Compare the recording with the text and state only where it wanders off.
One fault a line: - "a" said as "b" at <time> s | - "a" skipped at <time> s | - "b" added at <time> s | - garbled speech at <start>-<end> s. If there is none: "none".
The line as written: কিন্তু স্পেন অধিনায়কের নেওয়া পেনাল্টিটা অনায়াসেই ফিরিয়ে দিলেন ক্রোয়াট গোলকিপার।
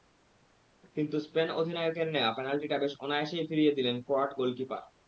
- "বেশ" added at 2.8 s